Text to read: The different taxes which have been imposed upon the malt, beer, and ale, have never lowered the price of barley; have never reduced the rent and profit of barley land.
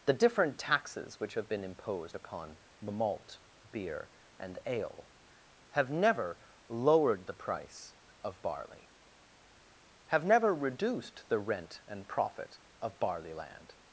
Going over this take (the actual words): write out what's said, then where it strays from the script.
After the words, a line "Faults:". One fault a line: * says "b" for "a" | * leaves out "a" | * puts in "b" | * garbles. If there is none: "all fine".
The different taxes which have been imposed upon the malt, beer, and ale, have never lowered the price of barley; have never reduced the rent and profit of barley land.
Faults:
all fine